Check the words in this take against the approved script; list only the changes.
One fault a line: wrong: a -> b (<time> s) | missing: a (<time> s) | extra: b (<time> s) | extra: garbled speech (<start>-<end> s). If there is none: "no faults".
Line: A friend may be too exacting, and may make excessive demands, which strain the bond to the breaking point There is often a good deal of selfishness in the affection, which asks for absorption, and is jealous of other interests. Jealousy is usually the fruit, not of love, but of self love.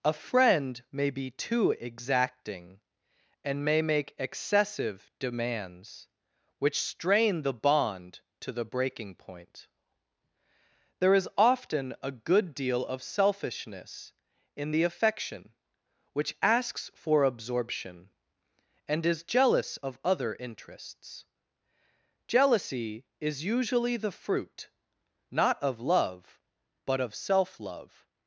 no faults